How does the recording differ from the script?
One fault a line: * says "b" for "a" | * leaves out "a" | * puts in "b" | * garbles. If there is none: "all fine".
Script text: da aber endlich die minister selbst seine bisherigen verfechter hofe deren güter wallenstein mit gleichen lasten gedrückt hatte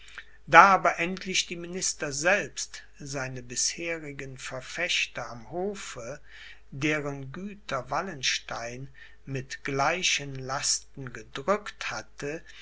* puts in "am"